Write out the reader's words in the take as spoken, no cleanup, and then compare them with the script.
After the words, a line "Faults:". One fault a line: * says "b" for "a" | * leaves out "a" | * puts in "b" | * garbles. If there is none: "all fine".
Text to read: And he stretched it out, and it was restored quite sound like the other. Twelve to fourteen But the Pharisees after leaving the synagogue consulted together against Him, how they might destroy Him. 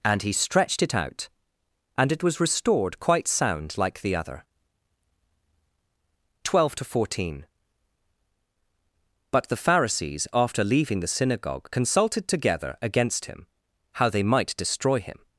And he stretched it out, and it was restored quite sound like the other. Twelve to fourteen But the Pharisees after leaving the synagogue consulted together against Him, how they might destroy Him.
Faults:
all fine